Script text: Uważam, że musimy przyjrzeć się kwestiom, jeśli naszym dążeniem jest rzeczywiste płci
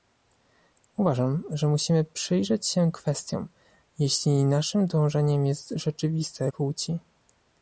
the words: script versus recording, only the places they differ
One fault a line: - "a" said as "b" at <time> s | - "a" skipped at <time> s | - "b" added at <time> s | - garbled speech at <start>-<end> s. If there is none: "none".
none